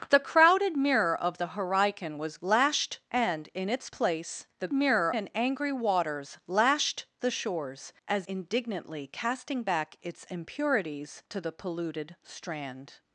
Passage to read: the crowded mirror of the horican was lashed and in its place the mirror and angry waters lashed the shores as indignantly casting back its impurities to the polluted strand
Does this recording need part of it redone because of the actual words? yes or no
no